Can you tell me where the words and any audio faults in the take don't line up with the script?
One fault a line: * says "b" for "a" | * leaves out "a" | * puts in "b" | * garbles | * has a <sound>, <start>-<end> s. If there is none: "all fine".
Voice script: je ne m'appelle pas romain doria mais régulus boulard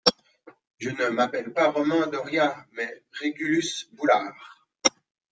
all fine